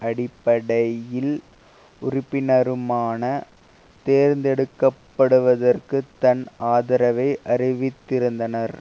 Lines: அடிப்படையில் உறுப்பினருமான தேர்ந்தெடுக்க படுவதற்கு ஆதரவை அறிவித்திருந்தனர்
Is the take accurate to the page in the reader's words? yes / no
no